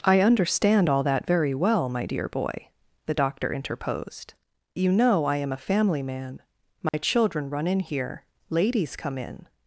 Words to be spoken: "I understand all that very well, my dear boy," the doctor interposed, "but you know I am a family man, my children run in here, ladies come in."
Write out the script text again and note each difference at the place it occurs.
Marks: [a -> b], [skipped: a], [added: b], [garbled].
"I understand all that very well, my dear boy," the doctor interposed, [skipped: "but] you know I am a family man, my children run in here, ladies come in."